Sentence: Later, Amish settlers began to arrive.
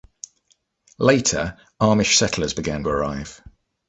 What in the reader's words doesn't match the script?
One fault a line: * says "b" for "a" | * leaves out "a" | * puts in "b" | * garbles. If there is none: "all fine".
* leaves out "to"